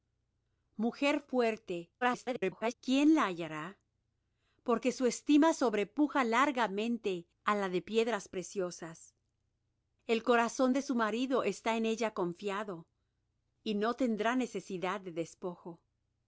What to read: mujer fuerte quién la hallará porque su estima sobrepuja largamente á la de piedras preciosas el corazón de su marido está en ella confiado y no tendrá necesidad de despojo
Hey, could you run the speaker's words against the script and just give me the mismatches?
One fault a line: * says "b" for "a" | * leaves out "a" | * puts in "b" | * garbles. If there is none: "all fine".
* garbles